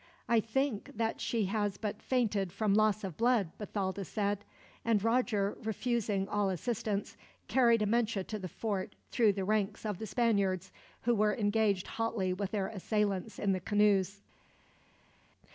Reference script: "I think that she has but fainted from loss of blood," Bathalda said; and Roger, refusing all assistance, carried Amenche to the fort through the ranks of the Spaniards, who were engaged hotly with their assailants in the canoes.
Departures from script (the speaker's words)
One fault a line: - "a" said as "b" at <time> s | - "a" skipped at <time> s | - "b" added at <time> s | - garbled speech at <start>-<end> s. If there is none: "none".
none